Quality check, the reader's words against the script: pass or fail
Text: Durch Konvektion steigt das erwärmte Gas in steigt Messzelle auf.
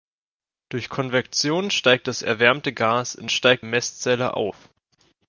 pass